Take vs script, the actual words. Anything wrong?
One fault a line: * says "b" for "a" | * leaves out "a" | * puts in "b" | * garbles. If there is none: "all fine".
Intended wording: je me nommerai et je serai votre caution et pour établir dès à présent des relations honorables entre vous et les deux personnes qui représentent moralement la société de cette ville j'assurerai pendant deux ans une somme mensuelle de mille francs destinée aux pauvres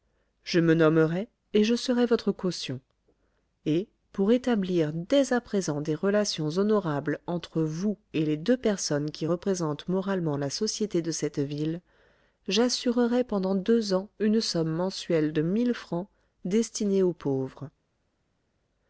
all fine